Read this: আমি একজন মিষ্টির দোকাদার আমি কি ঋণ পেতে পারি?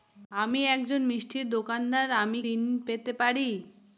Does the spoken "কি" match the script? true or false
false